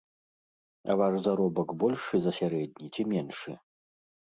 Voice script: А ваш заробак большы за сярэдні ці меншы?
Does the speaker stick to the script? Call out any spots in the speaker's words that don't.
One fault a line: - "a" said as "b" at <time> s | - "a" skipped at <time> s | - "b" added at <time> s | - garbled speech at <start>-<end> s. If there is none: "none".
none